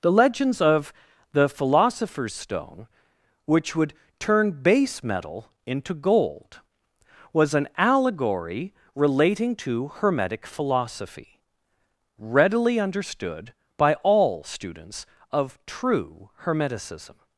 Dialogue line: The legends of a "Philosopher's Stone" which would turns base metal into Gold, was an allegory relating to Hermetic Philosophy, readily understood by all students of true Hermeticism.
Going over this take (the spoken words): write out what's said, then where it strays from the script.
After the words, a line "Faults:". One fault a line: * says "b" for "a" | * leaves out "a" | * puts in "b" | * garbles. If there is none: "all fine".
The legends of the "Philosopher's Stone" which would turn base metal into Gold, was an allegory relating to Hermetic Philosophy, readily understood by all students of true Hermeticism.
Faults:
* says "the" for "a"
* says "turn" for "turns"